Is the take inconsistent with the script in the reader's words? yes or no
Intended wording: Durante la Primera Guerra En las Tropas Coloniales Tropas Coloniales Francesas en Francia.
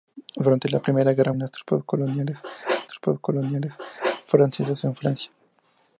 no